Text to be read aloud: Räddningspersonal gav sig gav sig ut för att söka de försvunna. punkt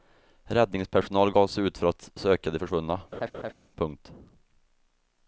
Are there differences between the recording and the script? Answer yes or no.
yes